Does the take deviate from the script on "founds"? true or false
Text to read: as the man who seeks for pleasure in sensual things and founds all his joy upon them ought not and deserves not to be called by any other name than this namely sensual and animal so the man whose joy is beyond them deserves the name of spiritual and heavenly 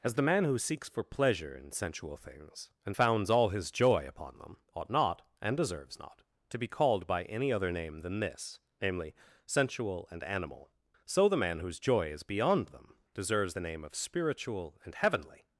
false